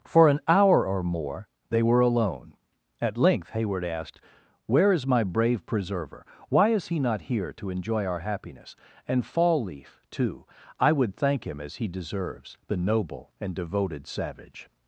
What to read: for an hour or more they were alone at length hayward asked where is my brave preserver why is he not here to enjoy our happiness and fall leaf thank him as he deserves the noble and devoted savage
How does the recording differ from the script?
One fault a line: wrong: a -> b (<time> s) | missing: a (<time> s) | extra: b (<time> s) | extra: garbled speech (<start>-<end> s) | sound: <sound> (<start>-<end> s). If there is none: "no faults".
extra: too i would (10.1 s)